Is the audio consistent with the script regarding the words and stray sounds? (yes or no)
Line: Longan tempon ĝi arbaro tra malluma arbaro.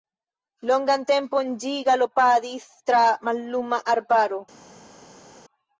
no